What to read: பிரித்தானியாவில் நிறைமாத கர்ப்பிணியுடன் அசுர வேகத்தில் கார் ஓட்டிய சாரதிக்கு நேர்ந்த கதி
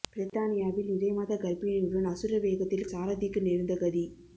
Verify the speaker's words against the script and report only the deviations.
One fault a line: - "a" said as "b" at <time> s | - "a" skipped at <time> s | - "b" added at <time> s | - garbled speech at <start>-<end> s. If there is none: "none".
- "கார் ஓட்டிய" skipped at 2.9 s